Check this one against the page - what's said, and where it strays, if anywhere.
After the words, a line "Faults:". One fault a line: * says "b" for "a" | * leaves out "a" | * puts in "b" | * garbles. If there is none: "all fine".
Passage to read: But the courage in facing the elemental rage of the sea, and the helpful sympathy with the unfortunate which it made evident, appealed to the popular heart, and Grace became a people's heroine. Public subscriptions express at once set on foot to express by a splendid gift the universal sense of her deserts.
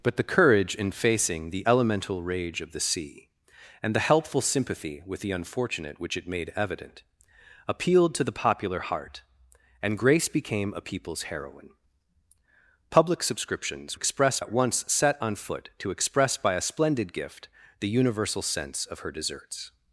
But the courage in facing the elemental rage of the sea, and the helpful sympathy with the unfortunate which it made evident, appealed to the popular heart, and Grace became a people's heroine. Public subscriptions express at once set on foot to express by a splendid gift the universal sense of her deserts.
Faults:
all fine